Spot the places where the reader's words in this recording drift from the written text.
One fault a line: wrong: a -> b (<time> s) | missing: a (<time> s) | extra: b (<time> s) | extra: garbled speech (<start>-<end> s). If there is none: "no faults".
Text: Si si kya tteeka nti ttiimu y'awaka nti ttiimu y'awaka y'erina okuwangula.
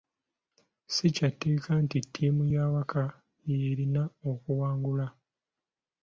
missing: si (1.1 s)
missing: nti ttiimu y'awaka (3.0 s)